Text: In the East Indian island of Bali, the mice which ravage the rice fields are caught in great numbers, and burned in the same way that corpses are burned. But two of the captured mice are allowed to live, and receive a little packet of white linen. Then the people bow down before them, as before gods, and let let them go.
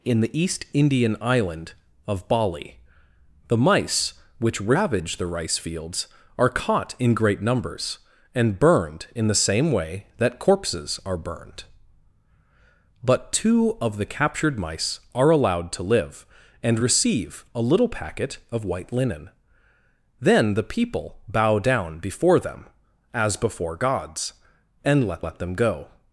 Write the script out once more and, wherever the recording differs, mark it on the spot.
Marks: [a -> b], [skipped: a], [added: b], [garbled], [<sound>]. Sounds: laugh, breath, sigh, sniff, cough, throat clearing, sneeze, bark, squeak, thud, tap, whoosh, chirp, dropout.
In the East Indian island of Bali, the mice which ravage the rice fields are caught in great numbers, and burned in the same way that corpses are burned. But two of the captured mice are allowed to live, and receive a little packet of white linen. Then the people bow down before them, as before gods, and let let them go.